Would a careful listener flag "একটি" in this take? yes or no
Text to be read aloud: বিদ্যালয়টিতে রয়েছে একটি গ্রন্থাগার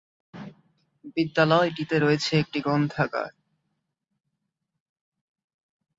no